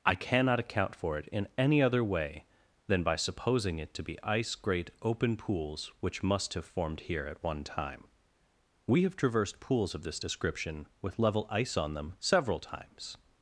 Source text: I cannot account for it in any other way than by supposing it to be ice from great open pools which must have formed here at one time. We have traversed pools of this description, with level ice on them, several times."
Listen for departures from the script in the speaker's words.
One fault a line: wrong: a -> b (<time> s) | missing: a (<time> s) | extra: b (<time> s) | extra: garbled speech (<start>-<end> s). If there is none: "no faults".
missing: from (4.5 s)